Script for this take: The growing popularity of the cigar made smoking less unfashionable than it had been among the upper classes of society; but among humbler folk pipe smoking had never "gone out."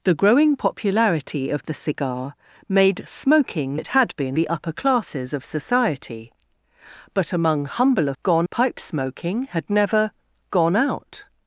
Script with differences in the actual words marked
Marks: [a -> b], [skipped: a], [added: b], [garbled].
The growing popularity of the cigar made smoking [skipped: less unfashionable than] it had been [skipped: among] the upper classes of society; but among humbler [folk -> gone] pipe smoking had never "gone out."